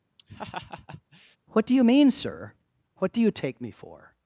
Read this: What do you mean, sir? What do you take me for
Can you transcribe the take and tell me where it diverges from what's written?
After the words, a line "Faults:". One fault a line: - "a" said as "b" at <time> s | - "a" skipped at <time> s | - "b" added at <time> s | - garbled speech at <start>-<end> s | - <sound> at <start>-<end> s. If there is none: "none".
What do you mean, sir? What do you take me for
Faults:
- laugh at 0.2-1.4 s